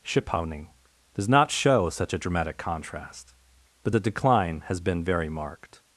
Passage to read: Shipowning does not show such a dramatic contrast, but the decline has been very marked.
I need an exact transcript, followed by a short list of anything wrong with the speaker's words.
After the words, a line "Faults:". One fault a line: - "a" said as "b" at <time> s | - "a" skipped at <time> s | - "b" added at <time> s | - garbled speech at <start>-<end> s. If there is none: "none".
Shipowning does not show such a dramatic contrast, but the decline has been very marked.
Faults:
none